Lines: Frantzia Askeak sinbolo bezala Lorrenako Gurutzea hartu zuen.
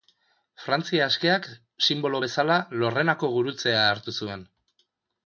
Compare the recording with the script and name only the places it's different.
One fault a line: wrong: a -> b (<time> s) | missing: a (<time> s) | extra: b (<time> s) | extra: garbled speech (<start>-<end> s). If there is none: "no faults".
no faults